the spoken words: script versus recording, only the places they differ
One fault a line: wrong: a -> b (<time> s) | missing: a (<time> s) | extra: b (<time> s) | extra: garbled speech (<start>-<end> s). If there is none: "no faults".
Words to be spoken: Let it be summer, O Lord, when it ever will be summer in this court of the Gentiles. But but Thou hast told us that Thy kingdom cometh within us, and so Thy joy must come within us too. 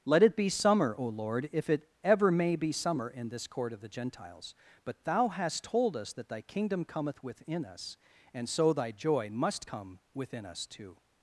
wrong: when -> if (1.5 s)
wrong: will -> may (2.3 s)
missing: but (5.0 s)